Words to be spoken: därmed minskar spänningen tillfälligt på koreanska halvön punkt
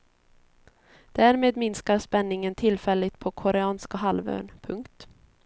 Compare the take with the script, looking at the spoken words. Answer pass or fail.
pass